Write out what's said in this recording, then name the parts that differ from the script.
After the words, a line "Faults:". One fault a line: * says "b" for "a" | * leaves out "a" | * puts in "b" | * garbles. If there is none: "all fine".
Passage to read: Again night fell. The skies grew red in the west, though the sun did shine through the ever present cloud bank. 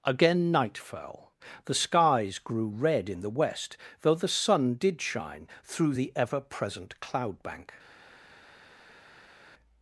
Again night fell. The skies grew red in the west, though the sun did shine through the ever present cloud bank.
Faults:
all fine